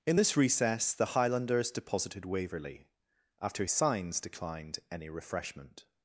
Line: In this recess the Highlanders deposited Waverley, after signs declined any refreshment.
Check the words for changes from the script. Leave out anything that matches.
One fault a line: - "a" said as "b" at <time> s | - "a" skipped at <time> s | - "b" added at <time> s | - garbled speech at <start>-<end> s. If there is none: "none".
none